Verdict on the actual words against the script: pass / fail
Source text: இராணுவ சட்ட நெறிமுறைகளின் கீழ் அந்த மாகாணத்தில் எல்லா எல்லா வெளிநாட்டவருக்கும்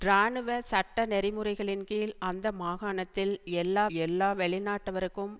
pass